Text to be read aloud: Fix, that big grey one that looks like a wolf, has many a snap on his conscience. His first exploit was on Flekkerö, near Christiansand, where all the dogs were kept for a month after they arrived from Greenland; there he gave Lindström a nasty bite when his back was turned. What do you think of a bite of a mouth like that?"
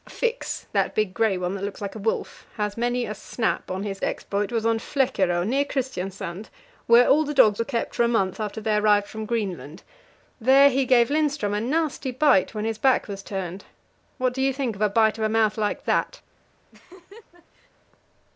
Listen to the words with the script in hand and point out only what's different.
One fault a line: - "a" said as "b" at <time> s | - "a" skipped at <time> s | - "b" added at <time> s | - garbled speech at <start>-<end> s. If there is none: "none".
- "conscience His first" skipped at 4.0 s